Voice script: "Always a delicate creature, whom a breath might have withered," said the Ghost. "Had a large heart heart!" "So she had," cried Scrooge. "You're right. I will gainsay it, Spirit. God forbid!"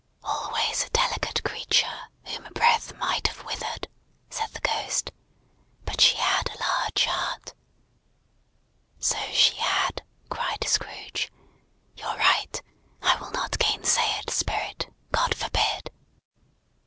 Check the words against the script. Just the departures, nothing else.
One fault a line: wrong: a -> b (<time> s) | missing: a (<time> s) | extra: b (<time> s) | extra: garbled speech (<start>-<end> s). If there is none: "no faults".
extra: But she (5.8 s)
missing: heart (7.5 s)
extra: not (13.3 s)